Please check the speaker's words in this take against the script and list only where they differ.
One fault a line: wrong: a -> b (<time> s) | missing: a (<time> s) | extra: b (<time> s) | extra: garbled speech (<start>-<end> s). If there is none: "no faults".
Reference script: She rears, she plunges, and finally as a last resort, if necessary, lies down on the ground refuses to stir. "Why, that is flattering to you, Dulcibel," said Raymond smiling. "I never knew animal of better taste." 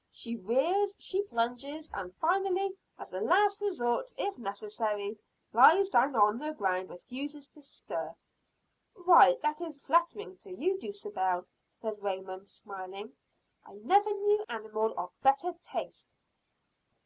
no faults